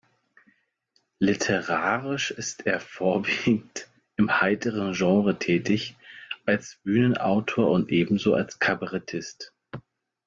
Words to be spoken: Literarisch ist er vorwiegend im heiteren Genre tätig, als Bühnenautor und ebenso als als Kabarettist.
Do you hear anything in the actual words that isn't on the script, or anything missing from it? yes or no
yes